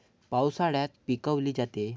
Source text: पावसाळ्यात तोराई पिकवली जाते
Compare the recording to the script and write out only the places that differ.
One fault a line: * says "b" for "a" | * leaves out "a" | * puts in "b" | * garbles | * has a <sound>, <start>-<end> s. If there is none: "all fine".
* leaves out "तोराई"